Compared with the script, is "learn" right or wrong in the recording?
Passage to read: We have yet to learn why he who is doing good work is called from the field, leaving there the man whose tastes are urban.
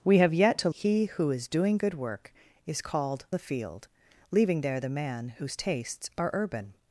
wrong